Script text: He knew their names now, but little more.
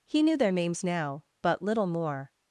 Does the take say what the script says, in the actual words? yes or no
yes